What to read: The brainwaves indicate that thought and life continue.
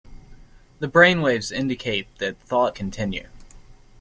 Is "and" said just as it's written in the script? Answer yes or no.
no